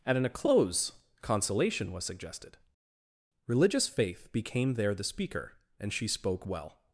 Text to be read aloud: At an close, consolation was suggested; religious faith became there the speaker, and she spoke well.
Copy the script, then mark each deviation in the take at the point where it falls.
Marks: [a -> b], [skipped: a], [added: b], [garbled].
At an close, consolation was suggested; religious faith became there the speaker, and she spoke well.